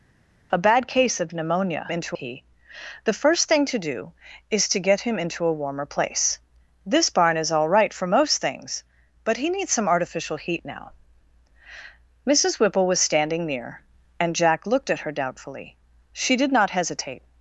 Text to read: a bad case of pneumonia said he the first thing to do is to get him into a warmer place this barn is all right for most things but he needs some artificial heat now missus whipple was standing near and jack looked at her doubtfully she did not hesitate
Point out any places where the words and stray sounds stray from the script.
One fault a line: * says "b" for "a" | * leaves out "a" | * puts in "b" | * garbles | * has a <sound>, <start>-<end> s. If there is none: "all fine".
* says "into" for "said"